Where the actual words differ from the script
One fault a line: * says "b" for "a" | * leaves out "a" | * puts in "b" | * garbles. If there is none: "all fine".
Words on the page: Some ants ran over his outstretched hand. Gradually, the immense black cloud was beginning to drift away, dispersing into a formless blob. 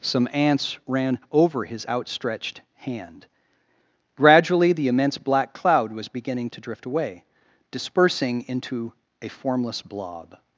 all fine